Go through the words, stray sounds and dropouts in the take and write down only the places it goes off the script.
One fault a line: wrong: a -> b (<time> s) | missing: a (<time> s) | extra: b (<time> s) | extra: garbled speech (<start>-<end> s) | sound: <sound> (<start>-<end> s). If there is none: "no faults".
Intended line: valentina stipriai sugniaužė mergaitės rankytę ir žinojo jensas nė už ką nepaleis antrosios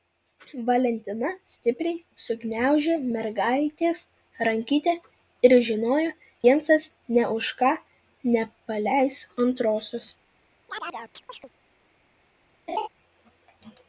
sound: chirp (10.7-11.5 s)
sound: laugh (12.7-12.9 s)